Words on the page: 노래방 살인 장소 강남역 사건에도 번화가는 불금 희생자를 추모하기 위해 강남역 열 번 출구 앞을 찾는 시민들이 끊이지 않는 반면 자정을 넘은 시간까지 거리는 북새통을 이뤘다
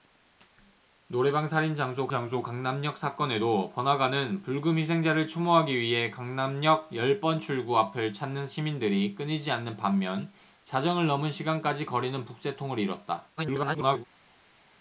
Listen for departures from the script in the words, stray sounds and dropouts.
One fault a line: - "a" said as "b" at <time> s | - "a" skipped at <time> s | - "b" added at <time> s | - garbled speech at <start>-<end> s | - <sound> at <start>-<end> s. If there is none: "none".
- "장소" added at 2.1 s
- garbled speech at 13.4-14.0 s